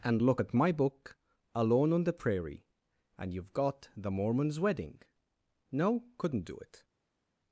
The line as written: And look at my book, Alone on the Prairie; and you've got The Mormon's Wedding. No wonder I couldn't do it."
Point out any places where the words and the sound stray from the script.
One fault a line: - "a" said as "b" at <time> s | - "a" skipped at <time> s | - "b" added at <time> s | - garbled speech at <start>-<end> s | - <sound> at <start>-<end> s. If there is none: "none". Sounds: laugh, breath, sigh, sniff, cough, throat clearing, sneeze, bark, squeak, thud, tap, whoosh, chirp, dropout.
- "wonder I" skipped at 6.0 s